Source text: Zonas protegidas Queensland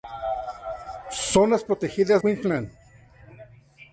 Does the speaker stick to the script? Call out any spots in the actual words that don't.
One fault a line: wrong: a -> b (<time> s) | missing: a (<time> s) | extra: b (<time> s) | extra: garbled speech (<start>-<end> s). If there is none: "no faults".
no faults